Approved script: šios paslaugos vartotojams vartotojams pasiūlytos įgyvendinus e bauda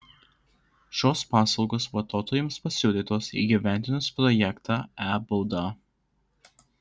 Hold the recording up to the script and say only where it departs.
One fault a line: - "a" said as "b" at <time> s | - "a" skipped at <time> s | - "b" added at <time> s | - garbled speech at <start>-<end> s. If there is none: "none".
- "vartotojams" skipped at 2.6 s
- "projektą" added at 4.2 s